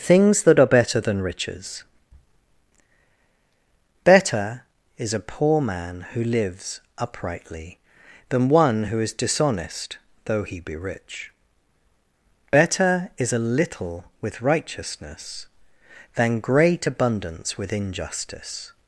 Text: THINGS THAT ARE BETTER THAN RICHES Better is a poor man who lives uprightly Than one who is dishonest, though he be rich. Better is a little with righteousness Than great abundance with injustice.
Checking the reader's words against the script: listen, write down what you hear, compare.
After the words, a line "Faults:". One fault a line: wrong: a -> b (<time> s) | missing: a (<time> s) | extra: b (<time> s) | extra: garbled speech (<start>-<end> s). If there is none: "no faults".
THINGS THAT ARE BETTER THAN RICHES Better is a poor man who lives uprightly Than one who is dishonest, though he be rich. Better is a little with righteousness Than great abundance with injustice.
Faults:
no faults